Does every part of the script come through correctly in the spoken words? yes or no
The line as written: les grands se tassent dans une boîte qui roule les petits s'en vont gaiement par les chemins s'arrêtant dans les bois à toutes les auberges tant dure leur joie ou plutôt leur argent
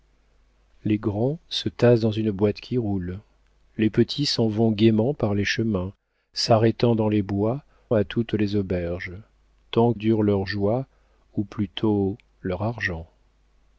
yes